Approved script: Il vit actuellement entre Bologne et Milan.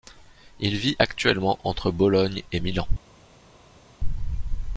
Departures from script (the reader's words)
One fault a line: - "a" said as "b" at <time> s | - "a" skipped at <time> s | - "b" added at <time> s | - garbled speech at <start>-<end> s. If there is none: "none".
none